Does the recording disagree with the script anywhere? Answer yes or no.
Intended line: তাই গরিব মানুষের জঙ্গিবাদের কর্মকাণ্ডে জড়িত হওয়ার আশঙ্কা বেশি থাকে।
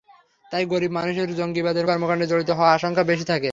no